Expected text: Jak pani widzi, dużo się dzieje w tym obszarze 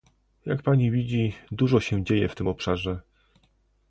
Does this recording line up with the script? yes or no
yes